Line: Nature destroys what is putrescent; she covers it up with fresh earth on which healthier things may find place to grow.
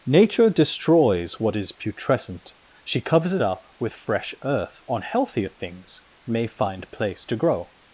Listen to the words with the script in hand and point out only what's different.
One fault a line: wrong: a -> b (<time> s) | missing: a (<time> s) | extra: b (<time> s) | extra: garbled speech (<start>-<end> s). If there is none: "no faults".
missing: which (5.0 s)